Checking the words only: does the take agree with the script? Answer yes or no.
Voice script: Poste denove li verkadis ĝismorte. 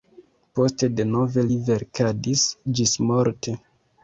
yes